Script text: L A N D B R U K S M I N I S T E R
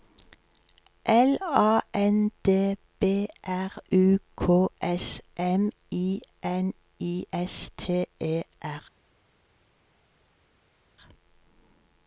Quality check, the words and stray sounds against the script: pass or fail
pass